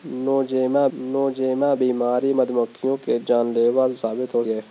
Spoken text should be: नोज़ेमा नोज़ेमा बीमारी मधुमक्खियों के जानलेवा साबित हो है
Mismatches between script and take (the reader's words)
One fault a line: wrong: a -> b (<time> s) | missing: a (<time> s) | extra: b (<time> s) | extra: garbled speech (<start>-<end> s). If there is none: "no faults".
no faults